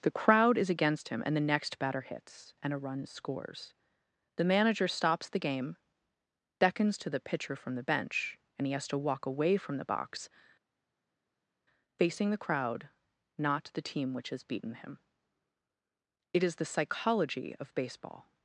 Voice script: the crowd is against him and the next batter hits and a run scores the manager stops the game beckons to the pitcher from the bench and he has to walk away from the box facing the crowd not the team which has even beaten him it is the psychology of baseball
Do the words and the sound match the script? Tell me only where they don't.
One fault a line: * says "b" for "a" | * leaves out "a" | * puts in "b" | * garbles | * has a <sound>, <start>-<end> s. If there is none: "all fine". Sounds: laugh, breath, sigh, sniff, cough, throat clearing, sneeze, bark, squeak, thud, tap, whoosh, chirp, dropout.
* leaves out "even"